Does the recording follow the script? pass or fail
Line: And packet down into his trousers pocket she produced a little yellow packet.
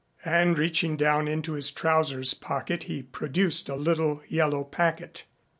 fail